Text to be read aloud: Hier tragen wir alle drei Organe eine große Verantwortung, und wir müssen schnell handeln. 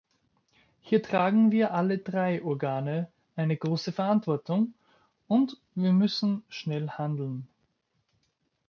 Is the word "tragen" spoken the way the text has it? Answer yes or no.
yes